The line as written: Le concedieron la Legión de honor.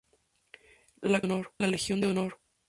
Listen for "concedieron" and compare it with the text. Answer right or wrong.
wrong